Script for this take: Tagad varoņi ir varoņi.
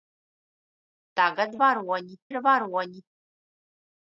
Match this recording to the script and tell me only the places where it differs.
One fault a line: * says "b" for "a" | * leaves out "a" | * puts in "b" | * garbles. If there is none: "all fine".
all fine